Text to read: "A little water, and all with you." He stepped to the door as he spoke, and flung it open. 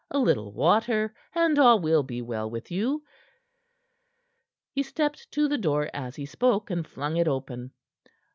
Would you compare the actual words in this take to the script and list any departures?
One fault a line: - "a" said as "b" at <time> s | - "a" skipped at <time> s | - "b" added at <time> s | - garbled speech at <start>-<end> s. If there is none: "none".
- "will be well" added at 1.8 s